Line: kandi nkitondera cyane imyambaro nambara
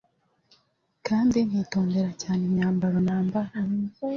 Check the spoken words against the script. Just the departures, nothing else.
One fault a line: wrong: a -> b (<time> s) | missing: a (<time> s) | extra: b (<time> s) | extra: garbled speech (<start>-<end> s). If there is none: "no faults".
no faults